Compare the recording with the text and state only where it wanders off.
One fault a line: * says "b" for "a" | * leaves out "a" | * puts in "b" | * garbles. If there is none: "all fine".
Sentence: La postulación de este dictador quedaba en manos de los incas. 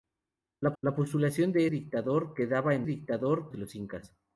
* puts in "la"
* leaves out "este"
* says "dictador" for "manos"